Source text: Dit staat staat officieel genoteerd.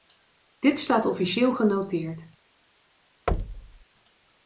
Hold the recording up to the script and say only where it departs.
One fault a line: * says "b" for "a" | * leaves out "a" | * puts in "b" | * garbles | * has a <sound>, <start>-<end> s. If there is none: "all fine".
* leaves out "staat"
* has a thud, 3.3-3.8 s